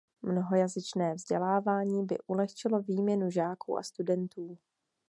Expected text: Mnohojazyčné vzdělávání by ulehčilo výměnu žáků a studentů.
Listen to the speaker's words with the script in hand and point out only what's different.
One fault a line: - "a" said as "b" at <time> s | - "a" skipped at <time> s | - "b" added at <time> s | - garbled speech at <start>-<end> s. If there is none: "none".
none